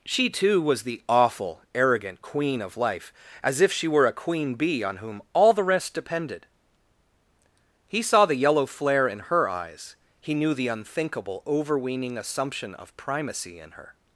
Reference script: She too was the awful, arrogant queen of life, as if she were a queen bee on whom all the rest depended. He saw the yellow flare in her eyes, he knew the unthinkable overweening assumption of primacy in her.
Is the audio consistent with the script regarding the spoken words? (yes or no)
yes